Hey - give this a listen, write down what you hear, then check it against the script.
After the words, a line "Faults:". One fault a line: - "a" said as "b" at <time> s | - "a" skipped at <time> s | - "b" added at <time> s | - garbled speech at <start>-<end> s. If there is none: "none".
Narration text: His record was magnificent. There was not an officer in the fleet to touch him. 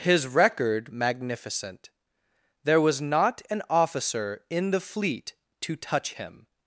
His record magnificent. There was not an officer in the fleet to touch him.
Faults:
- "was" skipped at 0.9 s